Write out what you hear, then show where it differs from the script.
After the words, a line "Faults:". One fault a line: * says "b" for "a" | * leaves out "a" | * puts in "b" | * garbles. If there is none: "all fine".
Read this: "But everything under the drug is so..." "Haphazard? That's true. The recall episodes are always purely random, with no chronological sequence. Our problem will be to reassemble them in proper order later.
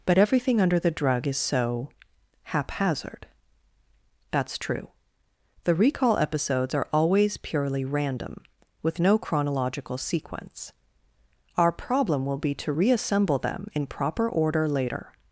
"But everything under the drug is so..." "Haphazard? That's true. The recall episodes are always purely random, with no chronological sequence. Our problem will be to reassemble them in proper order later.
Faults:
all fine